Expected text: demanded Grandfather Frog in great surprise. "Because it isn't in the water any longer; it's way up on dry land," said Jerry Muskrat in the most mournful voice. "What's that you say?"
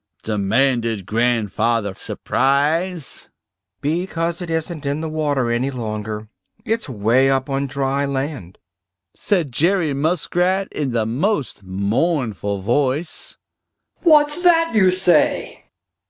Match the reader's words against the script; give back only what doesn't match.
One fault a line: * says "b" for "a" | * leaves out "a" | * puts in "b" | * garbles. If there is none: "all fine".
* leaves out "Frog in great"